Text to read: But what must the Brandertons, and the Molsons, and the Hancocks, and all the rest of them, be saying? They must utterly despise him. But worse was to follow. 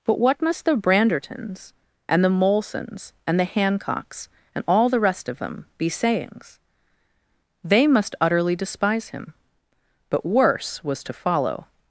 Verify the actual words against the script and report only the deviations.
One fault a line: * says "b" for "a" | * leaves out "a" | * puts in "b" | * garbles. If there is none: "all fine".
* says "sayings" for "saying"